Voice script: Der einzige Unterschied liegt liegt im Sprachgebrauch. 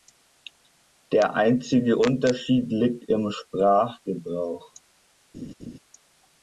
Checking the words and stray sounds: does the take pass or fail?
fail